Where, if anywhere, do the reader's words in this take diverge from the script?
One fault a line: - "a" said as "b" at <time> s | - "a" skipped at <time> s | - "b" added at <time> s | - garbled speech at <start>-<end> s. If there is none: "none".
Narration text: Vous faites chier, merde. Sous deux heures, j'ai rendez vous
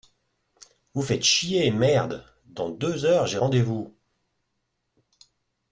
- "Sous" said as "Dans" at 2.5 s